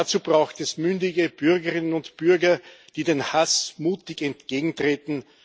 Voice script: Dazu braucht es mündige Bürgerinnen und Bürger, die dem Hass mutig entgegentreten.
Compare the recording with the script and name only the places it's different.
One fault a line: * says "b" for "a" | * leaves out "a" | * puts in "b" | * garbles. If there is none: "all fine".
all fine